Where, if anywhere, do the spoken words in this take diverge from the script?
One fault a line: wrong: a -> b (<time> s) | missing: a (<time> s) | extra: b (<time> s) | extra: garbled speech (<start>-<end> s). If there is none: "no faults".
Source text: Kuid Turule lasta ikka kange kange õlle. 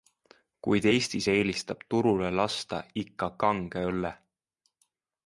extra: Eestis eelistab (0.9 s)
missing: kange (3.8 s)